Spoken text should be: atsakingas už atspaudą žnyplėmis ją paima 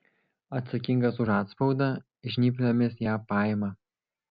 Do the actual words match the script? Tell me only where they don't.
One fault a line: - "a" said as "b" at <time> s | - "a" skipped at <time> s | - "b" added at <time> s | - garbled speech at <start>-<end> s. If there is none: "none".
none